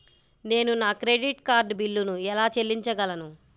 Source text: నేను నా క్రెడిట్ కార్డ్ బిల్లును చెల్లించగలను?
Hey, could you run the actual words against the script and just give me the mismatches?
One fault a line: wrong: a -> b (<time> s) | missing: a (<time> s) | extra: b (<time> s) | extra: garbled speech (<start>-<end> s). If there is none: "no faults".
extra: ఎలా (2.3 s)